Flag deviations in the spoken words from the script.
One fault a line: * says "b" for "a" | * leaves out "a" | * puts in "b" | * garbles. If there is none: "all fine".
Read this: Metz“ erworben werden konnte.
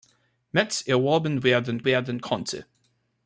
* puts in "werden"